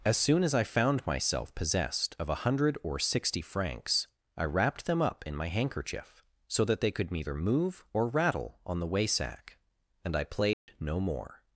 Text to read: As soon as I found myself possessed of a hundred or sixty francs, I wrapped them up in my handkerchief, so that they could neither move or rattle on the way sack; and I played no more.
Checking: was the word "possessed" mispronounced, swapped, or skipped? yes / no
no